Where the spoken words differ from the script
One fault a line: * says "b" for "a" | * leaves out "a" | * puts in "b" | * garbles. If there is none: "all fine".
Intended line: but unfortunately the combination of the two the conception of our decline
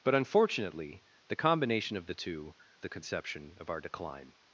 all fine